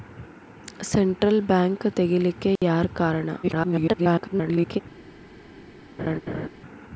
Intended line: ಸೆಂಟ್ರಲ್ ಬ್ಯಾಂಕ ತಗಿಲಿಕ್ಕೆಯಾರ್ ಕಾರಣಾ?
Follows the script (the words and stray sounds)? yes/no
no